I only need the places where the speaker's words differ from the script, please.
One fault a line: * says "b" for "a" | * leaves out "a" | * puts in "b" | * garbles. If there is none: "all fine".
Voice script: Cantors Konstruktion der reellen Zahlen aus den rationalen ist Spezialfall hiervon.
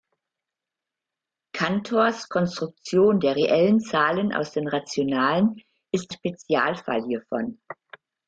all fine